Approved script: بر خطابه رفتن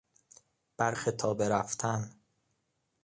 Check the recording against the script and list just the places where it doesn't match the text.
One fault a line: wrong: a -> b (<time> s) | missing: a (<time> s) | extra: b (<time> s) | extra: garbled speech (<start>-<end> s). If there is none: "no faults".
no faults